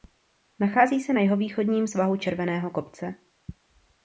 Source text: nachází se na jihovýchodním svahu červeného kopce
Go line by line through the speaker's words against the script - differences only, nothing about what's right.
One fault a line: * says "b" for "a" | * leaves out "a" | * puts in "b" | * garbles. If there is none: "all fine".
all fine